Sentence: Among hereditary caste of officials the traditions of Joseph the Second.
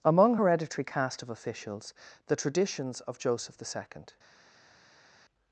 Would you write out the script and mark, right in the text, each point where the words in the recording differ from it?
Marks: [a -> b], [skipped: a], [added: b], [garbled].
Among hereditary caste of officials the traditions of Joseph the Second.